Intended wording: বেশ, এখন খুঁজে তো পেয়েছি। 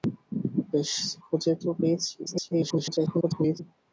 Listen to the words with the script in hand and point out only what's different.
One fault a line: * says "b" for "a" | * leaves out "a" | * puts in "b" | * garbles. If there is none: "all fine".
* leaves out "এখন"
* garbles